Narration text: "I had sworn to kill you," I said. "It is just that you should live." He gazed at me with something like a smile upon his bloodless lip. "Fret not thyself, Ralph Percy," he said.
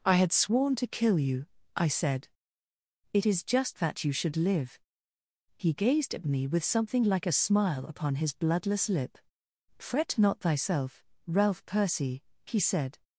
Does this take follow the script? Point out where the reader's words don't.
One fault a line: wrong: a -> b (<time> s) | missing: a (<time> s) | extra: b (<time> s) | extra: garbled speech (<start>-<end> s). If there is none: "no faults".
no faults